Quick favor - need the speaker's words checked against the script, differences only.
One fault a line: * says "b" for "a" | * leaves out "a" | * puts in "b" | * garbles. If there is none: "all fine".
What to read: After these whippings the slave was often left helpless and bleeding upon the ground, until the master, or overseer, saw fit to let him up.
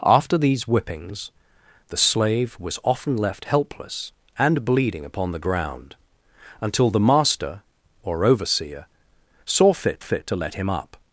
* puts in "fit"